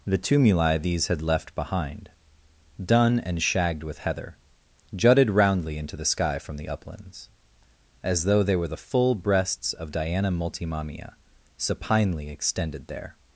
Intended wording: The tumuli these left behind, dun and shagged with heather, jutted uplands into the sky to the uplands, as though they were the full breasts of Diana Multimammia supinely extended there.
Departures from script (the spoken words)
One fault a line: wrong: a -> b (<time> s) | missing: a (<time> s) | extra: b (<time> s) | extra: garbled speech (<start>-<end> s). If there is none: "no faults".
extra: had (1.1 s)
wrong: uplands -> roundly (5.3 s)
wrong: to -> from (6.4 s)